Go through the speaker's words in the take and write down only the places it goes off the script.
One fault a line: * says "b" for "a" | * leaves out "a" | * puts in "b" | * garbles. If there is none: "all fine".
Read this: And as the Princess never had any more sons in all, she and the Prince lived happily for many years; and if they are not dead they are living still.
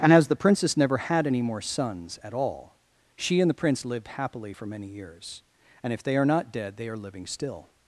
* says "at" for "in"